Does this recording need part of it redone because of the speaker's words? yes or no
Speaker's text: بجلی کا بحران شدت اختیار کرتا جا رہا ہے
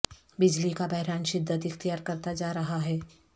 no